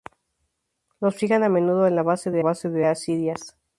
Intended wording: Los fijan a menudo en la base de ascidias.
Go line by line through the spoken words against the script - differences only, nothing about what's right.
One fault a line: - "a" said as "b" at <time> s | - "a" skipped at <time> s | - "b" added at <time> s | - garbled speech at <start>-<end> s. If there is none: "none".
- "base de" added at 2.4 s